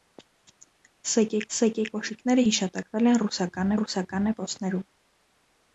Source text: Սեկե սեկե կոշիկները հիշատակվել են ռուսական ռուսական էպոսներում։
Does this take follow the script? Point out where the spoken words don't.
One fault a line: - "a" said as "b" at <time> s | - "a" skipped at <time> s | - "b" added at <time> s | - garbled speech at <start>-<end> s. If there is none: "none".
none